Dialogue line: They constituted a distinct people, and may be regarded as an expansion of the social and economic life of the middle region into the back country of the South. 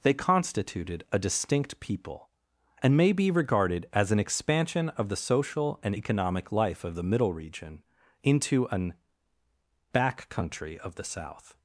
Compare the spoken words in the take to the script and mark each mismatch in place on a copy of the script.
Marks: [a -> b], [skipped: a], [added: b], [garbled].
They constituted a distinct people, and may be regarded as an expansion of the social and economic life of the middle region into [the -> an] back country of the South.